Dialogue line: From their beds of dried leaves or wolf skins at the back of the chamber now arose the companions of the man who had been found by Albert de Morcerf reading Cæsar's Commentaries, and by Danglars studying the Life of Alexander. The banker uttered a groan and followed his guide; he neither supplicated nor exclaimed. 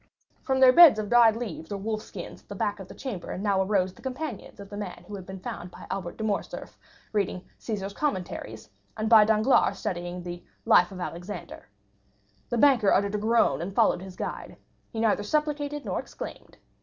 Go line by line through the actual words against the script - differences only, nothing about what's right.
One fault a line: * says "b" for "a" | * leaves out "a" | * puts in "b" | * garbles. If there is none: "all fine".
all fine